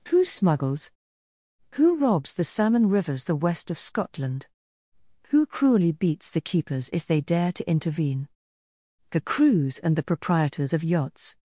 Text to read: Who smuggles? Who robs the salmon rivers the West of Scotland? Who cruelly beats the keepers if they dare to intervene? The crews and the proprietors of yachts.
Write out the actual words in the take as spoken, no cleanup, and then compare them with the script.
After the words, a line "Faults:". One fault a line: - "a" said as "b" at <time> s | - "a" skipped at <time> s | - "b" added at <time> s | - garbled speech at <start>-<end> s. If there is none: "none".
Who smuggles? Who robs the salmon rivers the West of Scotland? Who cruelly beats the keepers if they dare to intervene? The crews and the proprietors of yachts.
Faults:
none